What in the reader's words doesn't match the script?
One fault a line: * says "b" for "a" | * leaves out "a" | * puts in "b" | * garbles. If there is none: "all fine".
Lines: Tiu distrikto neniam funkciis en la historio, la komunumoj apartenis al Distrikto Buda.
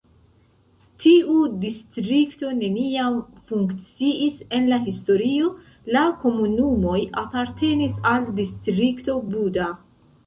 all fine